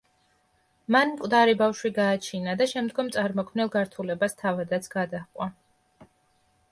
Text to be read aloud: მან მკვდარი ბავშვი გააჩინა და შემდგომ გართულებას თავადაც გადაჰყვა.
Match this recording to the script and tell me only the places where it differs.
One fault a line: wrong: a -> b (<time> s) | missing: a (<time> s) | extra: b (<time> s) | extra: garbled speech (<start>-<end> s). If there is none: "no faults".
extra: წარმოქმნილ (3.1 s)